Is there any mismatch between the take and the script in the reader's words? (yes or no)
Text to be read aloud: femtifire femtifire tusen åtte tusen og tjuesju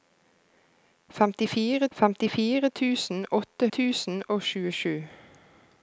no